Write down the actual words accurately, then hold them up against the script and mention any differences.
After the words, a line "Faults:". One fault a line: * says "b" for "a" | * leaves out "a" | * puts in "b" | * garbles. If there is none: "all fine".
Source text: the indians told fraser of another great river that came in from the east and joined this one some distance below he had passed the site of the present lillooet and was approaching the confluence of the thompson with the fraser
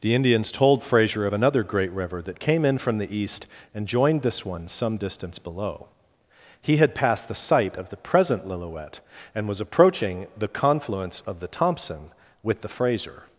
the indians told fraser of another great river that came in from the east and joined this one some distance below he had passed the site of the present lillooet and was approaching the confluence of the thompson with the fraser
Faults:
all fine